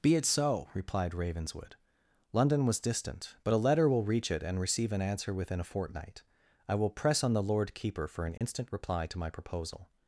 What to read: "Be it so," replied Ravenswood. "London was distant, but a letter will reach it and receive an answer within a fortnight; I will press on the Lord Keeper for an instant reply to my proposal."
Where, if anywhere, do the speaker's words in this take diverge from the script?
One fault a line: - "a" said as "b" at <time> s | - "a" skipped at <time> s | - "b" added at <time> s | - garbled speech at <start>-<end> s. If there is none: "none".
none